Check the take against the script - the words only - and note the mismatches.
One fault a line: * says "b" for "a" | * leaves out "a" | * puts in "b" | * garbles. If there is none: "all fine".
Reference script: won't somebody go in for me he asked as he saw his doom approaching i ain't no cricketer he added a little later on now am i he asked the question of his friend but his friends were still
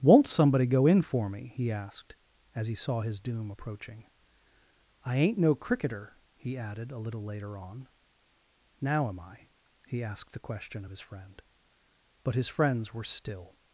all fine